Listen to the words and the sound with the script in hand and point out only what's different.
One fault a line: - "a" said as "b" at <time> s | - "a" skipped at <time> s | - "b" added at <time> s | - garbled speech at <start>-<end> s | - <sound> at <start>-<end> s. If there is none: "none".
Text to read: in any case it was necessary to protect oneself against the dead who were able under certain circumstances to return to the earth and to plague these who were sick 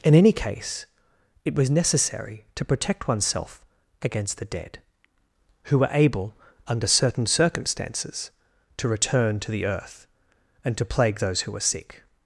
- "these" said as "those" at 11.2 s